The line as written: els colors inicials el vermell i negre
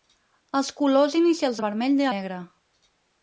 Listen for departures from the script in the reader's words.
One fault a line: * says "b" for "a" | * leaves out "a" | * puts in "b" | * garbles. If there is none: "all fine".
all fine